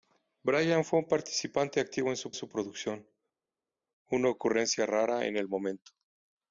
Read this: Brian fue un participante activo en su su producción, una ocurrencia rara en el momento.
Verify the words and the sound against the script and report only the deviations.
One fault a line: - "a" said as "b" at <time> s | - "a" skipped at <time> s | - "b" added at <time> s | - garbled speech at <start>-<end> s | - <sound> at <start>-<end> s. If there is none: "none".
none